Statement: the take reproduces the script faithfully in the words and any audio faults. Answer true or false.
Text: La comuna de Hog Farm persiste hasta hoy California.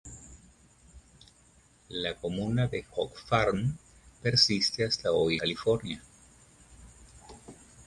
true